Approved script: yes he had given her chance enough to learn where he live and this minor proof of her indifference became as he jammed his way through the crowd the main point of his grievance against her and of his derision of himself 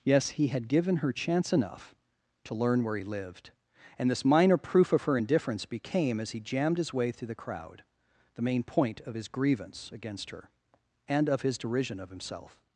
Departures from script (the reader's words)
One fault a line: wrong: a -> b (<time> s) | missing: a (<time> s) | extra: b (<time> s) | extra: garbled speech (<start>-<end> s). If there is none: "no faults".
wrong: live -> lived (3.0 s)